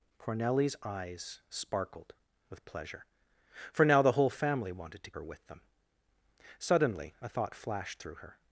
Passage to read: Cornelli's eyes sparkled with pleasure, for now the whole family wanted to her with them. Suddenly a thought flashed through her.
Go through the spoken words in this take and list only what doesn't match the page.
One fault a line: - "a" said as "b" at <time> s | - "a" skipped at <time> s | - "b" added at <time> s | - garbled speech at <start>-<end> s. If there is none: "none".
none